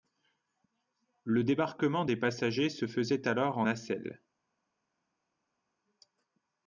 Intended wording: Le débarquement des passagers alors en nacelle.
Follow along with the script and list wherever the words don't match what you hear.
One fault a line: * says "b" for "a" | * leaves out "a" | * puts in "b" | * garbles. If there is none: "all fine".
* puts in "se faisait"